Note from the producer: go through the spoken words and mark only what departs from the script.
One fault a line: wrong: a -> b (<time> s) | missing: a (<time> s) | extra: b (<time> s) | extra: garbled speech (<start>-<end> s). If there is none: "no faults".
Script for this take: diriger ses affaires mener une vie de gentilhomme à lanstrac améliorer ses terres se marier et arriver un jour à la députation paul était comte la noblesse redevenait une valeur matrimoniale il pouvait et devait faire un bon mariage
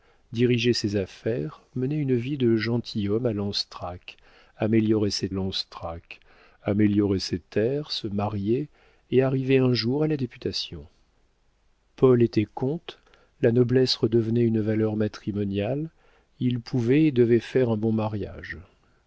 extra: lanstrac améliorer ses (5.3 s)